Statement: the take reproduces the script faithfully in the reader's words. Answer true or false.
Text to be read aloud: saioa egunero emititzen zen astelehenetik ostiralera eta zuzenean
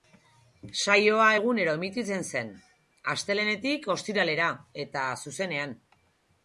true